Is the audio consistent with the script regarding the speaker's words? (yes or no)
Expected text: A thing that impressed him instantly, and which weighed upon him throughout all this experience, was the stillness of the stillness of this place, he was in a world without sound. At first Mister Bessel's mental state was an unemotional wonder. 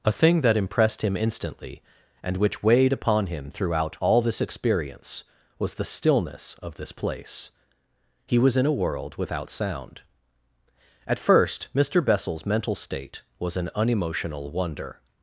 no